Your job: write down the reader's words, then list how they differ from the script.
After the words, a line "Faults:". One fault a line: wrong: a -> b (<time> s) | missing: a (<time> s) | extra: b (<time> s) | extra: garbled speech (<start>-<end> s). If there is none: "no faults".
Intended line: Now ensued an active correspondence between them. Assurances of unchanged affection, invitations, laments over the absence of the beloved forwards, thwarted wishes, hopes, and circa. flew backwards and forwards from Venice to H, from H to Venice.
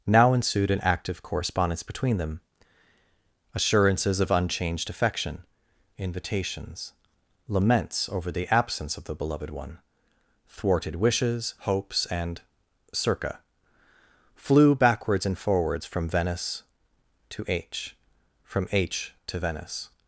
Now ensued an active correspondence between them. Assurances of unchanged affection, invitations, laments over the absence of the beloved one, thwarted wishes, hopes, and circa. flew backwards and forwards from Venice to H, from H to Venice.
Faults:
wrong: forwards -> one (9.5 s)